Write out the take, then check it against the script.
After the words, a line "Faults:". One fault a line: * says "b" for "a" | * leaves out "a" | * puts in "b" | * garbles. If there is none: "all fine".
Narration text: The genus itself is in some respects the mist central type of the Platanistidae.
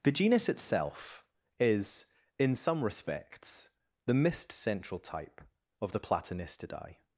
The genus itself is in some respects the mist central type of the Platanistidae.
Faults:
all fine